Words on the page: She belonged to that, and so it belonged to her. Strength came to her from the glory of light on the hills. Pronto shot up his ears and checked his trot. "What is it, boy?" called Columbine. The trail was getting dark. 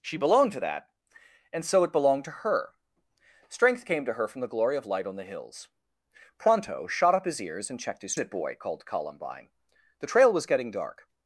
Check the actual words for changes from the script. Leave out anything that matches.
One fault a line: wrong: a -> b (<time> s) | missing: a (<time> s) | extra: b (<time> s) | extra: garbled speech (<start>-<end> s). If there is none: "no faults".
missing: trot What is (8.2 s)